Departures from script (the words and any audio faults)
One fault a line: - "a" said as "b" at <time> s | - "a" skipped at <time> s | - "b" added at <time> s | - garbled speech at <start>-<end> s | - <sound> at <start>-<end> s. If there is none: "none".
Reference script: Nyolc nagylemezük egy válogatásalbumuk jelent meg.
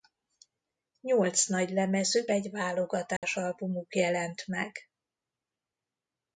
- dropout at 3.2-3.2 s